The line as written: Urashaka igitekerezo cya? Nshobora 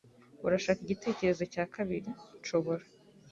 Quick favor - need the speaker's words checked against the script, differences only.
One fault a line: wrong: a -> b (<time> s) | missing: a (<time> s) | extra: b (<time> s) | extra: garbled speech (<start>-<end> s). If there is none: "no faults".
extra: kabiri (1.7 s)